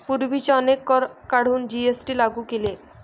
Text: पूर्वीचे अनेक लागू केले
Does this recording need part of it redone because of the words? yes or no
yes